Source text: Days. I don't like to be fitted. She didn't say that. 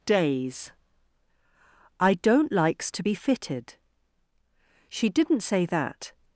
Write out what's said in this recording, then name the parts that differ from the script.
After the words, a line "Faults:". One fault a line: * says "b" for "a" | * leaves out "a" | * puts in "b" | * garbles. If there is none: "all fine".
Days. I don't likes to be fitted. She didn't say that.
Faults:
* says "likes" for "like"